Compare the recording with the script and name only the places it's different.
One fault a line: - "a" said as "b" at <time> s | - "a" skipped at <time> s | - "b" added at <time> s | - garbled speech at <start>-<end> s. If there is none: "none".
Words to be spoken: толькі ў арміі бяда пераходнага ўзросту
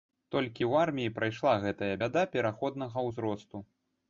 - "прайшла гэтая" added at 1.2 s